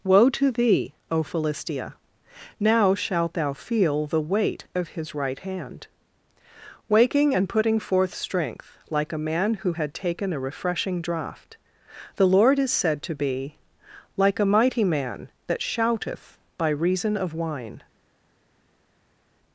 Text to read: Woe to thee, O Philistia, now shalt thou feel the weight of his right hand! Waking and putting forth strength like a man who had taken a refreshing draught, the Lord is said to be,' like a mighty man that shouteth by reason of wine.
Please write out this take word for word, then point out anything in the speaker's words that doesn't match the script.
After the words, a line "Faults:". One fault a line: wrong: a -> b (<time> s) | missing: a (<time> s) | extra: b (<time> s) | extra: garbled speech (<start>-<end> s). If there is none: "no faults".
Woe to thee, O Philistia, now shalt thou feel the weight of his right hand! Waking and putting forth strength like a man who had taken a refreshing draught, the Lord is said to be,' like a mighty man that shouteth by reason of wine.
Faults:
no faults